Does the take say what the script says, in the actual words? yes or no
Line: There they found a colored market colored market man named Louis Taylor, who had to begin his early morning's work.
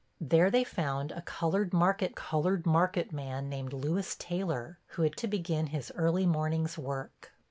yes